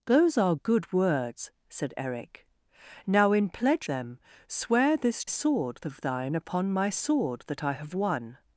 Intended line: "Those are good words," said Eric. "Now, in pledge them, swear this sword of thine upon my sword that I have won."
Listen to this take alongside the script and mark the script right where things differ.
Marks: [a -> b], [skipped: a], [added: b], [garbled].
"Those are good words," said Eric. "Now, in pledge them, swear this sword of thine upon my sword that I have won."